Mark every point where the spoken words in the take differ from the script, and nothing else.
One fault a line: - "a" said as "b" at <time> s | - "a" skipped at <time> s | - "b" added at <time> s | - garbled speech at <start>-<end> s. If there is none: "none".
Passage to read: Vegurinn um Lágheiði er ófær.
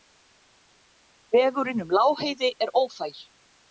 none